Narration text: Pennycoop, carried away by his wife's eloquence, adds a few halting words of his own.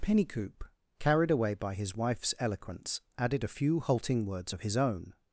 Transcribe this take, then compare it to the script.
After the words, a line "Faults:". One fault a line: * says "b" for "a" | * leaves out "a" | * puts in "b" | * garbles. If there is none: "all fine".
Pennycoop, carried away by his wife's eloquence, added a few halting words of his own.
Faults:
* says "added" for "adds"